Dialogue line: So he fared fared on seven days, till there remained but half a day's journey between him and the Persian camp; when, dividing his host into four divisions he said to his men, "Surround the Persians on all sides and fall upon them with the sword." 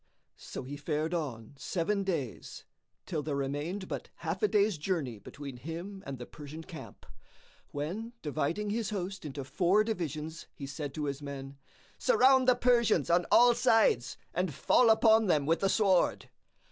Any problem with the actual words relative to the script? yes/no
yes